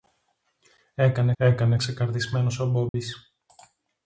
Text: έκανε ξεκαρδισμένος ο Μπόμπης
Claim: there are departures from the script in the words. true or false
true